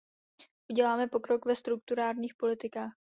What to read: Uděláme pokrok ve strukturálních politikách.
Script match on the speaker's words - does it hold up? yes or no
yes